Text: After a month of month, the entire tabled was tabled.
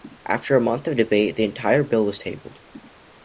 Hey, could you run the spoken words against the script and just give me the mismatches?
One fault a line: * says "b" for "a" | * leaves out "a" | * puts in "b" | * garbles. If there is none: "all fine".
* says "debate" for "month"
* says "bill" for "tabled"